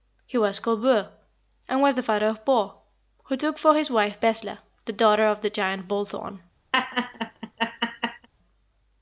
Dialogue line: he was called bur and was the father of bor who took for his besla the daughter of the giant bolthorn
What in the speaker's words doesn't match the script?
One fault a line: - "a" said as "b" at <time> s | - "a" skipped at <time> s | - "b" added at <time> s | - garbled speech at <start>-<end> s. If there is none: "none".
- "wife" added at 3.9 s